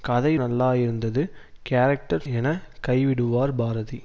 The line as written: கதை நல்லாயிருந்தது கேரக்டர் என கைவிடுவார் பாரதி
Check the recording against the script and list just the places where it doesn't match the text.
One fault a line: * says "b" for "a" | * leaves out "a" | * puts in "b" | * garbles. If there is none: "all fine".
all fine